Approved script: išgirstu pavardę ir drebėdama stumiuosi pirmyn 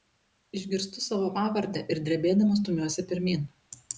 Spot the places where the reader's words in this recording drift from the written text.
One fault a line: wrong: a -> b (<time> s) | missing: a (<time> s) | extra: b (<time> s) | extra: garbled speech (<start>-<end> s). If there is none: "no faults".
extra: savo (1.1 s)